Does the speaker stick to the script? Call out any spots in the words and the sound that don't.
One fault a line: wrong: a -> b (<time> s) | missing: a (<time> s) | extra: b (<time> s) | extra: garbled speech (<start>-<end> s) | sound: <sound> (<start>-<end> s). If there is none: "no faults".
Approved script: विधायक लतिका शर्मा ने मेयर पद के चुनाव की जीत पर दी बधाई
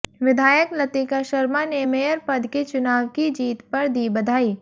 no faults